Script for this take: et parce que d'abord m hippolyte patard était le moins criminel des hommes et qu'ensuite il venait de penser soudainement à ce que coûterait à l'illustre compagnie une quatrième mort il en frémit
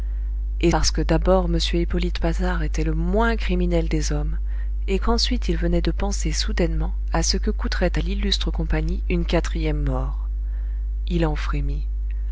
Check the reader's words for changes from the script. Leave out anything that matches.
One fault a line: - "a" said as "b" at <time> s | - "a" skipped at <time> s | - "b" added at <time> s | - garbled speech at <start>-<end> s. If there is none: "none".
none